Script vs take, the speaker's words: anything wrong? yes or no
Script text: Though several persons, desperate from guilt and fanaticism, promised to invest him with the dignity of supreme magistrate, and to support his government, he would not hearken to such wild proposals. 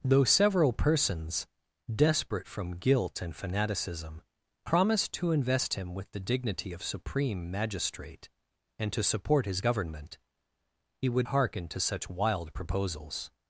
yes